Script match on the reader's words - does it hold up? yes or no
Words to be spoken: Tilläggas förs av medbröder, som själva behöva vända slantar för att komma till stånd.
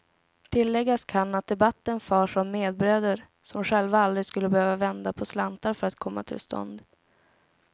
no